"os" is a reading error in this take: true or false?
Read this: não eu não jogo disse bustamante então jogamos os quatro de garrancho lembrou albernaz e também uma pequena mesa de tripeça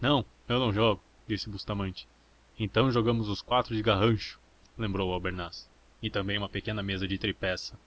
false